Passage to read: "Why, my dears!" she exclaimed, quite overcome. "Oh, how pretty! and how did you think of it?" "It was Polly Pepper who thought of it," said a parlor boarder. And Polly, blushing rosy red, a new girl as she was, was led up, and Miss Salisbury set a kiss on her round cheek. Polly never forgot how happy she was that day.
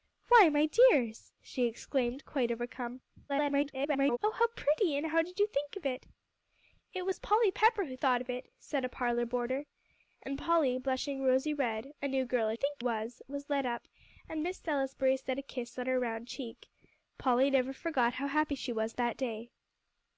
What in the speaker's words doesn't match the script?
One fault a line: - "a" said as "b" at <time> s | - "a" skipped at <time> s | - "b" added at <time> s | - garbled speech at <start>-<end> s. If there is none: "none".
- garbled speech at 3.3-4.2 s
- "she" said as "think" at 12.5 s